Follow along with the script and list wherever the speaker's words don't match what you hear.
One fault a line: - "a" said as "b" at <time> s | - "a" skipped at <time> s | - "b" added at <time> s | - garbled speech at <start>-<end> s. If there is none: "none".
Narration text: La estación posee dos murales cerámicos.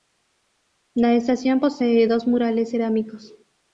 none